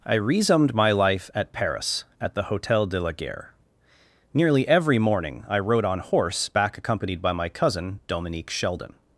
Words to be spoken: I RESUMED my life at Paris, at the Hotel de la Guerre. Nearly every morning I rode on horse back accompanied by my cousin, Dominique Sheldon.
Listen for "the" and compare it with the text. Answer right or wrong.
right